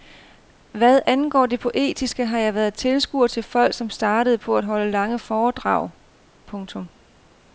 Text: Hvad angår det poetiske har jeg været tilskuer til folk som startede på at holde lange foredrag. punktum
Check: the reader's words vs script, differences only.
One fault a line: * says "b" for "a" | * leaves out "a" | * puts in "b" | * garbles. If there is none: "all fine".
all fine